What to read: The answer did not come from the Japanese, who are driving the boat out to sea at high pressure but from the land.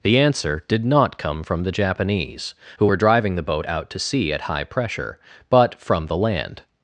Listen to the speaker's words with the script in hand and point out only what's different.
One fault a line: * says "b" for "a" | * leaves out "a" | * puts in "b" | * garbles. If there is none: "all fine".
* says "were" for "are"